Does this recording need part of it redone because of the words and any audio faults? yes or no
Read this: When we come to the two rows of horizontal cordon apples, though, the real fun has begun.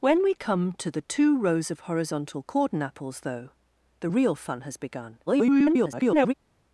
yes